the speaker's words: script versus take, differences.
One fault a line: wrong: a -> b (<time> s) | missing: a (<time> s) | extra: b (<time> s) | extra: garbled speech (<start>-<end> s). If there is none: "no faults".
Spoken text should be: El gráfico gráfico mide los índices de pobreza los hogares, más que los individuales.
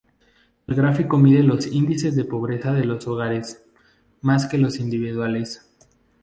missing: gráfico (1.2 s)
extra: de (2.7 s)